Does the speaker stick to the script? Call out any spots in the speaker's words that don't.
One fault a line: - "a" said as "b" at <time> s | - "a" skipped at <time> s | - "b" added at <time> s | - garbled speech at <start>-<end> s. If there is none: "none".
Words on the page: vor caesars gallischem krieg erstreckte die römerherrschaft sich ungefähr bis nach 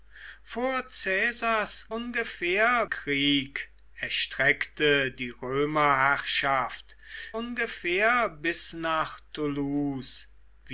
- "gallischem" said as "ungefähr" at 1.9 s
- "sich" skipped at 7.0 s